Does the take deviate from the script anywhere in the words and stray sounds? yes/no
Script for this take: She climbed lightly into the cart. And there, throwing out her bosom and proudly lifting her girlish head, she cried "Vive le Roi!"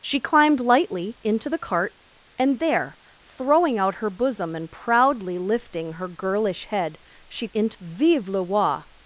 yes